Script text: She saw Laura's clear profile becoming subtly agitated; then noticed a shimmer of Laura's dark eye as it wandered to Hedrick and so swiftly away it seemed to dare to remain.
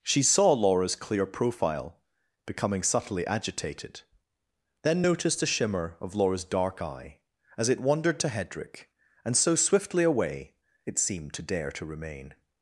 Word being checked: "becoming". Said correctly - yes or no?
yes